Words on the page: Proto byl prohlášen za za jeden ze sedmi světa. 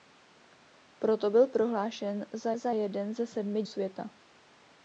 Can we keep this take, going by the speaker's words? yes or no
yes